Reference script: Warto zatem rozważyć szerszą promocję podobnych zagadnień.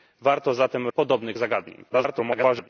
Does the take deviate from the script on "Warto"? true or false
false